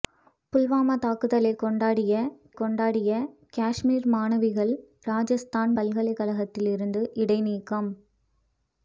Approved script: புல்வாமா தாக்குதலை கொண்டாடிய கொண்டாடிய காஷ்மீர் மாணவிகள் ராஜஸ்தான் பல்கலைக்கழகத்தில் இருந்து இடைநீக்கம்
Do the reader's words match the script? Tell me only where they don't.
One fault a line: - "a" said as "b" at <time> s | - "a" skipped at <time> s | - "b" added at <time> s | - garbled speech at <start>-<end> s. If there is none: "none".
none